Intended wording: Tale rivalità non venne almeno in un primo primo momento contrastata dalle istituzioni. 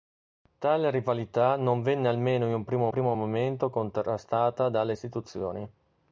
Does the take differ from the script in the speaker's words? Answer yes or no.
no